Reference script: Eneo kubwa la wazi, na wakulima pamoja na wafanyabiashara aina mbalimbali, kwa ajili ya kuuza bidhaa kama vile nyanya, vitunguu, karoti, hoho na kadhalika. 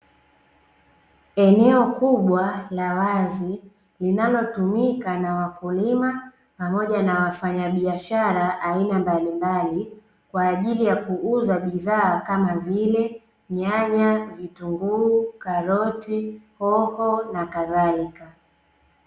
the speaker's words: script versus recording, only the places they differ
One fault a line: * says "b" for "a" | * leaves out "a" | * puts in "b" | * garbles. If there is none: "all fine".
* puts in "linalotumika"